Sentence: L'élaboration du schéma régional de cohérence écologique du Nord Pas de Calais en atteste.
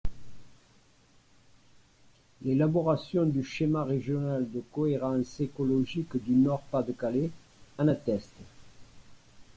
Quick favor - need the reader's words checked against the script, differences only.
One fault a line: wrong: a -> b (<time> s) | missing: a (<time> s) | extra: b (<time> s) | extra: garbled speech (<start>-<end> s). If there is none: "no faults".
no faults